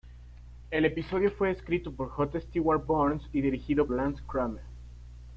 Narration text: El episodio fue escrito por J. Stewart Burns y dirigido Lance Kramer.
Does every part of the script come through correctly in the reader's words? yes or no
yes